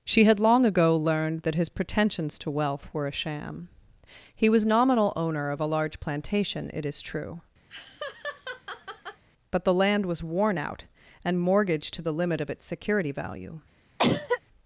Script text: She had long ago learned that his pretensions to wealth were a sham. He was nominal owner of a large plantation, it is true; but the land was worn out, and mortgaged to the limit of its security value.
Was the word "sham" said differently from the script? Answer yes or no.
no